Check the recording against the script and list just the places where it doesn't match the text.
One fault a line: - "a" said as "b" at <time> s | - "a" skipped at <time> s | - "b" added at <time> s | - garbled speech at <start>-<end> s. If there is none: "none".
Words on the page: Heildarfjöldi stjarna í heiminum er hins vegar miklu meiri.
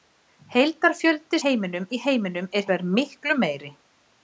- "stjarna" said as "heiminum" at 1.4 s
- "hins" skipped at 2.7 s